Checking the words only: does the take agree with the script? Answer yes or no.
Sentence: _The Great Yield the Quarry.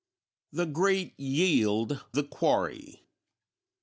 yes